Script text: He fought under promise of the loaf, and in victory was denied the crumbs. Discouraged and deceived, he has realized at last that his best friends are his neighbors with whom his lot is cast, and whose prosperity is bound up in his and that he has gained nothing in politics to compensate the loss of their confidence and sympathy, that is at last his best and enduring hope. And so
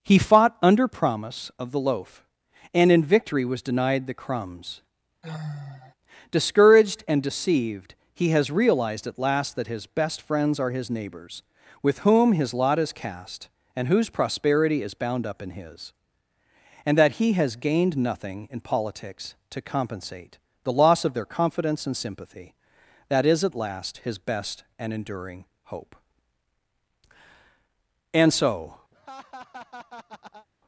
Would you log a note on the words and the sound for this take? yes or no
yes